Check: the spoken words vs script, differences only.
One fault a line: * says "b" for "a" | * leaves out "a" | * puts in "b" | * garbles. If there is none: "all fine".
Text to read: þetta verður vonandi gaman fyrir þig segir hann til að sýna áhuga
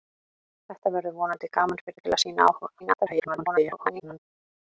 * leaves out "þig segir hann"
* garbles